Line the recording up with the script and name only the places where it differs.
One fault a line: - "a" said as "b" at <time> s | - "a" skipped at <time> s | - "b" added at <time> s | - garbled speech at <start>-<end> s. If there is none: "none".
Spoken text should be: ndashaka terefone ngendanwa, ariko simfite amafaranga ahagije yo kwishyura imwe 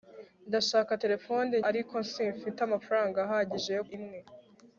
- "ngendanwa" skipped at 1.5 s
- "kwishyura" skipped at 3.8 s